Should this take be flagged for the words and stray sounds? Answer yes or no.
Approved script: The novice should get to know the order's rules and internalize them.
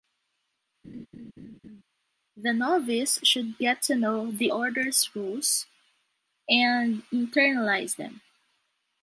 yes